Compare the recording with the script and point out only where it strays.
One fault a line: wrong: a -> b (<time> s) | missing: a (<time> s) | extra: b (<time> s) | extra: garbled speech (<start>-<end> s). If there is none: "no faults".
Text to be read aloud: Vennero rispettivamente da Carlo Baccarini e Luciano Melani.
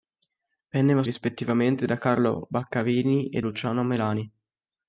no faults